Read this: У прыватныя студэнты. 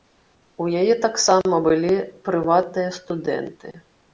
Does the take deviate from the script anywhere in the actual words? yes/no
yes